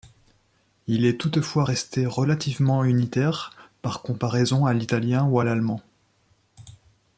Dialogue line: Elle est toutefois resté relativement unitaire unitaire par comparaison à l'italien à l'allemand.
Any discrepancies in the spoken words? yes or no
yes